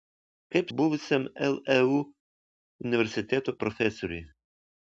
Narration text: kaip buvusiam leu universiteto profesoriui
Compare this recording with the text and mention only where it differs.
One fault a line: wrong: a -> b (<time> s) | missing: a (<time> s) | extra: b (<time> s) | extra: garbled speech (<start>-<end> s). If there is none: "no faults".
no faults